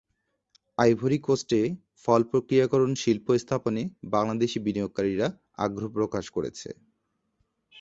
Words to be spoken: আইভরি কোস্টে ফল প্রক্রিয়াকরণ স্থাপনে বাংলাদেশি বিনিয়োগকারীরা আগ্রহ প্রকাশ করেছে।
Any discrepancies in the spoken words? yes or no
yes